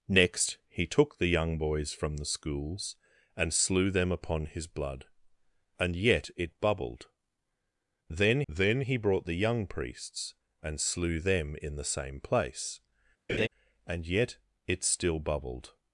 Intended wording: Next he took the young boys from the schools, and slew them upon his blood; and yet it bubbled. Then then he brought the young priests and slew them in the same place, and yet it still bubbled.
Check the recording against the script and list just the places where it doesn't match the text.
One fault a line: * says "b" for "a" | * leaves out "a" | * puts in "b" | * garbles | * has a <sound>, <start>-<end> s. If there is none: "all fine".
* has a laugh, 13.3-13.5 s